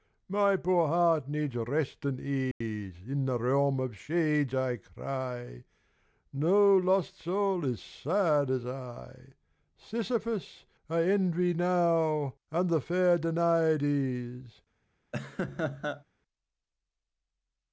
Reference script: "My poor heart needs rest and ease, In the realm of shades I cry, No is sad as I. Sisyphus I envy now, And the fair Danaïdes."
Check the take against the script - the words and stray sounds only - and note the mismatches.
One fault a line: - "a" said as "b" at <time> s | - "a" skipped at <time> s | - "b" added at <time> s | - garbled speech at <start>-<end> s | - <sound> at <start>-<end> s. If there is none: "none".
- dropout at 2.5-2.6 s
- "lost soul" added at 6.8 s
- laugh at 15.1-16.0 s